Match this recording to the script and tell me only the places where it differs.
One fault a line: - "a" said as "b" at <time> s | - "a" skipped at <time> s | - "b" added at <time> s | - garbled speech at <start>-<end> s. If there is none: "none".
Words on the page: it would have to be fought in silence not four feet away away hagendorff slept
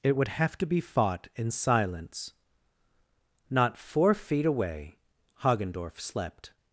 - "away" skipped at 5.0 s